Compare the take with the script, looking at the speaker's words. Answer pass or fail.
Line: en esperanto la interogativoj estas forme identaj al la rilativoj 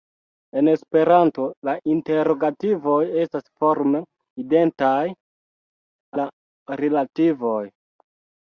fail